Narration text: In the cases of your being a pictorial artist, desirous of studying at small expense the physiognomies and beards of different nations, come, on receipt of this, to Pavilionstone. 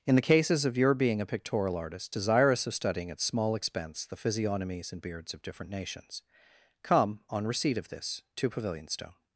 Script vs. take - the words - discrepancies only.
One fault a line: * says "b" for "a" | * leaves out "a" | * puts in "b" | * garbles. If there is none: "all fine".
all fine